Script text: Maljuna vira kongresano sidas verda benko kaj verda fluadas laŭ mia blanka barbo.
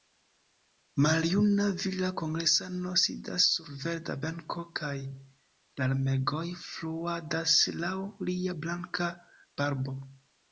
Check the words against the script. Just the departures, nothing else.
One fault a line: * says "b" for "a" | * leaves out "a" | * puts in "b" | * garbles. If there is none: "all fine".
* puts in "sur"
* says "larmegoj" for "verda"
* says "lia" for "mia"